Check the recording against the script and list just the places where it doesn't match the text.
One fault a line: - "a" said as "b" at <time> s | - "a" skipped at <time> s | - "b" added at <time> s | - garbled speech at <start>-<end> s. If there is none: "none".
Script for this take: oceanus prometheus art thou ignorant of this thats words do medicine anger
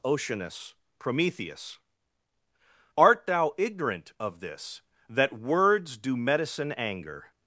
- "thats" said as "that" at 5.1 s